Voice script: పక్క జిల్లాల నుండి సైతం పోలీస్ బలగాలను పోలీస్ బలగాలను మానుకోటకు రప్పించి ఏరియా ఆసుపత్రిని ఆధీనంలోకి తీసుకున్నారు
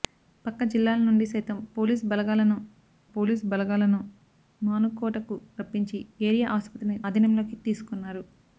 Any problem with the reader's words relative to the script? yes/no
no